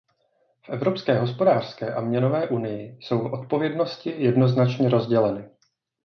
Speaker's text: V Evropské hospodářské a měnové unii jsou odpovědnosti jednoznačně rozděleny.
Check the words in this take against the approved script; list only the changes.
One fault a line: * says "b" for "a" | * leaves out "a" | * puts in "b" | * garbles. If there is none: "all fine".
all fine